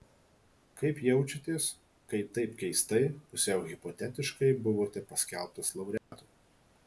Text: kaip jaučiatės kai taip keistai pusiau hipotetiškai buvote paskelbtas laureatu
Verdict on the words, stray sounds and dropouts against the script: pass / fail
fail